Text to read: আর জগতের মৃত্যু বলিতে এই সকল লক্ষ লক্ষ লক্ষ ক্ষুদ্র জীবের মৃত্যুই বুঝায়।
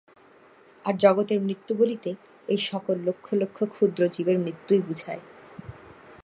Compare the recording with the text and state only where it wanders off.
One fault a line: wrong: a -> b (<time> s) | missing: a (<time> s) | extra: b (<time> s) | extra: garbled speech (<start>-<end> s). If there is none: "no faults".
missing: লক্ষ (3.6 s)